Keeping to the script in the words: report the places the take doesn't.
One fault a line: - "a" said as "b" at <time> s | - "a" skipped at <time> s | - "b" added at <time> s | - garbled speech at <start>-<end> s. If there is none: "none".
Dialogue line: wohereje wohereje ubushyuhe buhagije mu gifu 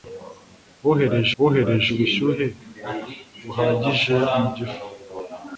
none